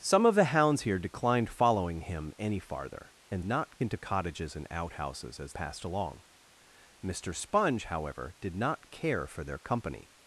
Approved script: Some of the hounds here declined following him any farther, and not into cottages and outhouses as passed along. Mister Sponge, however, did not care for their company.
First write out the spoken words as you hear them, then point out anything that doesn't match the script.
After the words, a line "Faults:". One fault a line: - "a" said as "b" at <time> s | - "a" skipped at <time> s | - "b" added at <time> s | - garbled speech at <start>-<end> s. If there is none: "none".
Some of the hounds here declined following him any farther, and not into cottages and outhouses as passed along. Mister Sponge, however, did not care for their company.
Faults:
none